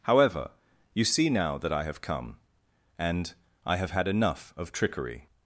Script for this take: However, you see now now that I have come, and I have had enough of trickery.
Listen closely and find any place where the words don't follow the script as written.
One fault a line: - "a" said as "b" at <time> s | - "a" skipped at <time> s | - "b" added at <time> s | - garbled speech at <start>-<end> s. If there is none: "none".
- "now" skipped at 1.6 s